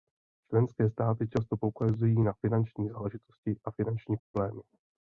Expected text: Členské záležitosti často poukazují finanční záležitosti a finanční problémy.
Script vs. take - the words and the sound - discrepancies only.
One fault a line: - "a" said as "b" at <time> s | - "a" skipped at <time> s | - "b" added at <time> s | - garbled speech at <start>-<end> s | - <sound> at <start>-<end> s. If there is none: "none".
- "záležitosti" said as "státy" at 0.9 s
- "na" added at 2.2 s
- dropout at 4.2-4.3 s